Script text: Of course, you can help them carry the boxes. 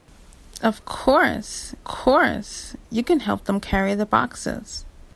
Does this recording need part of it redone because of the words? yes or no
yes